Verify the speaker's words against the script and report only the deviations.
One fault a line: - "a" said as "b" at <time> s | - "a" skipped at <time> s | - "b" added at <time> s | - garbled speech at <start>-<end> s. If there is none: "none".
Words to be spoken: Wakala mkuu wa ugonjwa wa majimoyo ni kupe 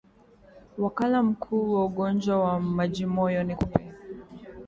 none